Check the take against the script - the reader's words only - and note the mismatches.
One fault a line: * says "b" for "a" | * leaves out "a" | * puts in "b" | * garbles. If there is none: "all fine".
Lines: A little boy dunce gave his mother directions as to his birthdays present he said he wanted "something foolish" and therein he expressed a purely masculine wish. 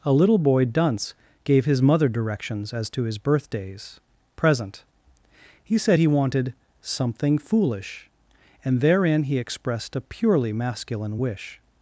all fine